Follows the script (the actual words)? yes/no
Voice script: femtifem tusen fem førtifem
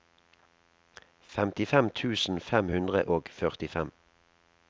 no